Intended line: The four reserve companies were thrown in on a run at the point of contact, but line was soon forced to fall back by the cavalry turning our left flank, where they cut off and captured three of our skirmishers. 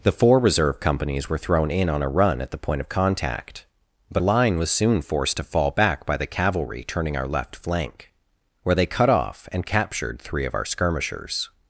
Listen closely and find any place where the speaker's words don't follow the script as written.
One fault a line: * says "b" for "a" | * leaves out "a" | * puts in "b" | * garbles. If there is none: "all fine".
all fine